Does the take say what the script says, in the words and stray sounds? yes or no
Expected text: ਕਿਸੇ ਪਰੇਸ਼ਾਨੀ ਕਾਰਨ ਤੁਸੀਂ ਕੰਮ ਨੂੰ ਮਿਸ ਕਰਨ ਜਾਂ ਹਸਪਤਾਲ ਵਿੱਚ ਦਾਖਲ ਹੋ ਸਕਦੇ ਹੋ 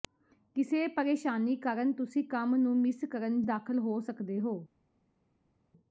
no